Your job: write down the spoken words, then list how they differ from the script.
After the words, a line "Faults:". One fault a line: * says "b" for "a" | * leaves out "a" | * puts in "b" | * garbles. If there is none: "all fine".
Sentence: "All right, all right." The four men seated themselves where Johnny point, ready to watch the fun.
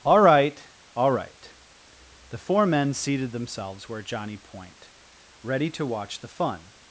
"All right, all right." The four men seated themselves where Johnny point, ready to watch the fun.
Faults:
all fine